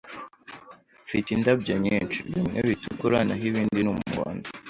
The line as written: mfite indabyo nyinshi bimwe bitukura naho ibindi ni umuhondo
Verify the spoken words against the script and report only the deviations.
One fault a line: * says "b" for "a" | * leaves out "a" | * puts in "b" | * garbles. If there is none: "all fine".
all fine